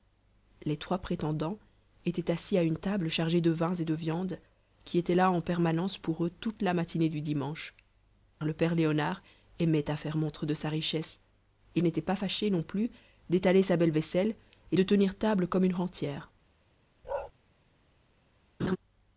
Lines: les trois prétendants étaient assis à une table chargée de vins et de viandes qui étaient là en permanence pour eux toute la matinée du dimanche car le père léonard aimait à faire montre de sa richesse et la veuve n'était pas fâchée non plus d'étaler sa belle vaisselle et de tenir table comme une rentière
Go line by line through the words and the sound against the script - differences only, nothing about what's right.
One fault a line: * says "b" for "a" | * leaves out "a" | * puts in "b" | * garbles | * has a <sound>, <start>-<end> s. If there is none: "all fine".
* leaves out "car"
* leaves out "la veuve"
* has a bark, 17.0-17.3 s
* has a laugh, 18.6-18.8 s